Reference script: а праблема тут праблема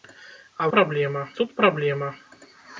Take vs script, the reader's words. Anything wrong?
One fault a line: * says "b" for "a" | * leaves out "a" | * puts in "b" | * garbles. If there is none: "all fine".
all fine